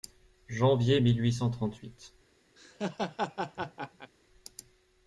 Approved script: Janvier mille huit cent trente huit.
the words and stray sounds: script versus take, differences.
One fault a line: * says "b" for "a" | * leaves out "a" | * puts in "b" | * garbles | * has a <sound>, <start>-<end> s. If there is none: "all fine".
* has a laugh, 2.6-4.1 s